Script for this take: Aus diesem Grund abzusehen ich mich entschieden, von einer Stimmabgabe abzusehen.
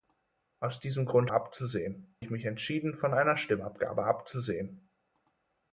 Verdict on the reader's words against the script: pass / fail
pass